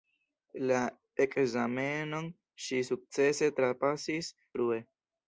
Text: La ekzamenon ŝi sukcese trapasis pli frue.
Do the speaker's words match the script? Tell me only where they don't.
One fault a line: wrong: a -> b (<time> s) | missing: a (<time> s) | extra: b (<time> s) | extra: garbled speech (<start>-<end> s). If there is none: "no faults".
missing: pli (4.3 s)